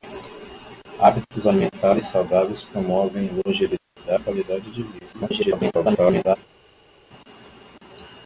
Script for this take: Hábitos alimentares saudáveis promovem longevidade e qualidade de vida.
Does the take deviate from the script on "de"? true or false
false